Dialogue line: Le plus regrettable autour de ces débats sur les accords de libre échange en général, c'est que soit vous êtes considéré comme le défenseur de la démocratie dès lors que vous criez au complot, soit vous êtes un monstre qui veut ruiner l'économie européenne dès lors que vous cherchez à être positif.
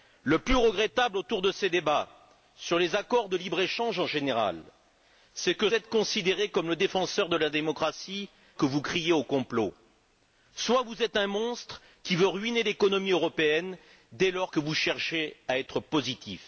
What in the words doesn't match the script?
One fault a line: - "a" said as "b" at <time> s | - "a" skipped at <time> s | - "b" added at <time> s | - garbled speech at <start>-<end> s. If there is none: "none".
- "soit vous" skipped at 5.7 s
- "dès lors" skipped at 8.3 s